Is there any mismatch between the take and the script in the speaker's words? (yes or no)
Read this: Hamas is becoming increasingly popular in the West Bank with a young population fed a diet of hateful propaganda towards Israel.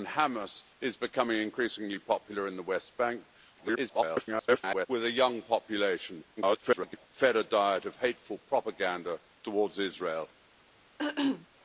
yes